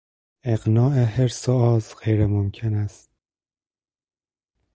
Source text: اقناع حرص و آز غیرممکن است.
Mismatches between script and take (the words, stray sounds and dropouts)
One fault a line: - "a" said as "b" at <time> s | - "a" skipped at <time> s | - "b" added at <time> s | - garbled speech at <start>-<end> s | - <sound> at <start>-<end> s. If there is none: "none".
none